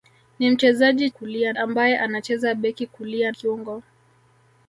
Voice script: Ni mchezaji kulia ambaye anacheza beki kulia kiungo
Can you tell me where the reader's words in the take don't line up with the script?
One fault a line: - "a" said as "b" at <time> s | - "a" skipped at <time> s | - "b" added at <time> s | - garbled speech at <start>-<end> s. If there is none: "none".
none